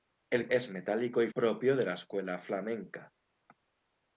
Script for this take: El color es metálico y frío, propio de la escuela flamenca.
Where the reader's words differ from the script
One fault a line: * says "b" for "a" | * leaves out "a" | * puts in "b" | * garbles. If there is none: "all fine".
* leaves out "color"
* leaves out "frío"